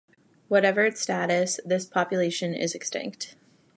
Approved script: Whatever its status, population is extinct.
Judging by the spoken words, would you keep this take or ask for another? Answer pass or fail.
fail